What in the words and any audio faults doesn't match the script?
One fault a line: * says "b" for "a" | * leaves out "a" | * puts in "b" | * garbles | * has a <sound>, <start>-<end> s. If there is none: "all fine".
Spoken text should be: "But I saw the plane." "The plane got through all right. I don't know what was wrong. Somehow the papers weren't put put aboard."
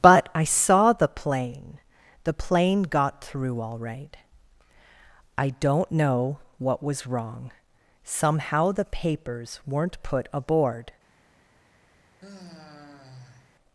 * leaves out "put"
* has a sigh, 12.2-13.6 s